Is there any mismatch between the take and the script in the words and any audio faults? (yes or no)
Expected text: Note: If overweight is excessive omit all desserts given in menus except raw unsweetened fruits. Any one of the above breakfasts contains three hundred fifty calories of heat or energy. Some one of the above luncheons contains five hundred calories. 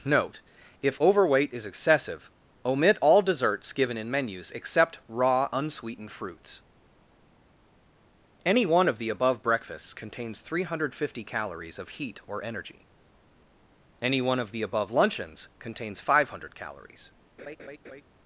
yes